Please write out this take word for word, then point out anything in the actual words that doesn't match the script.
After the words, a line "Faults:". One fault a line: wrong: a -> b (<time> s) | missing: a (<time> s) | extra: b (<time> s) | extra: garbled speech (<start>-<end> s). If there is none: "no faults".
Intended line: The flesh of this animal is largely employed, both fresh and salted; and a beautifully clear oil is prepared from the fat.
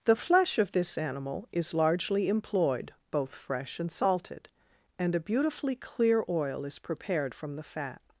The flesh of this animal is largely employed, both fresh and salted; and a beautifully clear oil is prepared from the fat.
Faults:
no faults